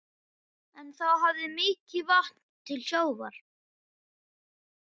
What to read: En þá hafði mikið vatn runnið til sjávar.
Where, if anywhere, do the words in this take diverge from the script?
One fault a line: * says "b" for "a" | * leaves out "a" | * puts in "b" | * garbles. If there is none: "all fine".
* leaves out "runnið"